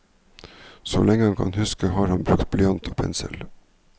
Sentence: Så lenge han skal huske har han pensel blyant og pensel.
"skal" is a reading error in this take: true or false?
true